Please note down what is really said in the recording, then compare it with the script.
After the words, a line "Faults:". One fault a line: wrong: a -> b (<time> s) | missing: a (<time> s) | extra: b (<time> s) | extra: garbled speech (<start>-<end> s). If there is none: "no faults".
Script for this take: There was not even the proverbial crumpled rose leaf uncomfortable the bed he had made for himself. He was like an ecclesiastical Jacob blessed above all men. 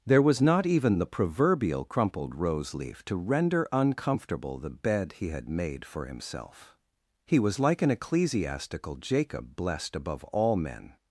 There was not even the proverbial crumpled rose leaf to render uncomfortable the bed he had made for himself. He was like an ecclesiastical Jacob blessed above all men.
Faults:
extra: to render (3.0 s)